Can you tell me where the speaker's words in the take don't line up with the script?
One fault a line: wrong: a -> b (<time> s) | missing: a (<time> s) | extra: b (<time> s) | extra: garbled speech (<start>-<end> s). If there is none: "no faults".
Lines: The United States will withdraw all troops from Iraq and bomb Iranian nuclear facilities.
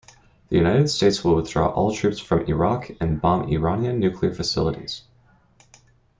no faults